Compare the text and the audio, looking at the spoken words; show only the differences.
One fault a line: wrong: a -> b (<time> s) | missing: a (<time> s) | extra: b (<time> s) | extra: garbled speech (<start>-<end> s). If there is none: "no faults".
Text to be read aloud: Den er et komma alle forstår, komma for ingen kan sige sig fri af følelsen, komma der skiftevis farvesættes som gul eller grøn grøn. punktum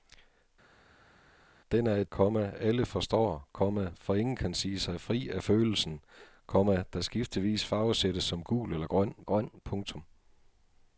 no faults